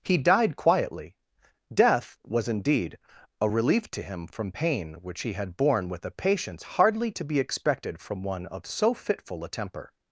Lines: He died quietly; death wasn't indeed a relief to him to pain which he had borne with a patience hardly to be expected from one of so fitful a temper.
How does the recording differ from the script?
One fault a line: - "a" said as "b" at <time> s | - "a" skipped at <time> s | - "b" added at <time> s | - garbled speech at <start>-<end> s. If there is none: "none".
- "wasn't" said as "was" at 2.2 s
- "to" said as "from" at 4.3 s